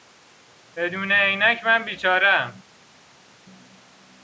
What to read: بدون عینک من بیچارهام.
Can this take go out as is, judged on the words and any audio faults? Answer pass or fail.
pass